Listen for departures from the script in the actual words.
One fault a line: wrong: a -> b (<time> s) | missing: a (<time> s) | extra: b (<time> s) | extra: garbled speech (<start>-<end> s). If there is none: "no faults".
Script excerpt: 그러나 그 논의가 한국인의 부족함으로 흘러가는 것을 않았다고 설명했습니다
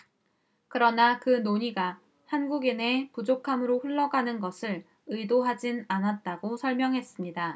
extra: 의도하진 (5.1 s)